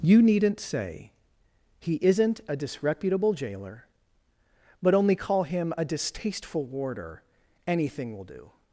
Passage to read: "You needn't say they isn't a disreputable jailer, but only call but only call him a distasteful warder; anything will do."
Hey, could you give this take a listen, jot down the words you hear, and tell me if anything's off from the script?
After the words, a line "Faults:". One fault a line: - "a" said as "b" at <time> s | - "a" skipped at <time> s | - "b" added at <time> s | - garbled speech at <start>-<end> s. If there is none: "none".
"You needn't say he isn't a disreputable jailer, but only call him a distasteful warder; anything will do."
Faults:
- "they" said as "he" at 1.8 s
- "but only call" skipped at 5.4 s